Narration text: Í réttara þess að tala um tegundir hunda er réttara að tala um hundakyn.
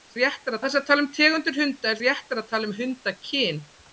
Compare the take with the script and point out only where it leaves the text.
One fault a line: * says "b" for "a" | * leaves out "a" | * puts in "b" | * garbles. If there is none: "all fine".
all fine